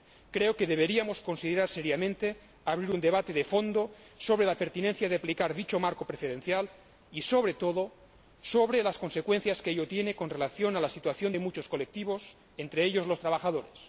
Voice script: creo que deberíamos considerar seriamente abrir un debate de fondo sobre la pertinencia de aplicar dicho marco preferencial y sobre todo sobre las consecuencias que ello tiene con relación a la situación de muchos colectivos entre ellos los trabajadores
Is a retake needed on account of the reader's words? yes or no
no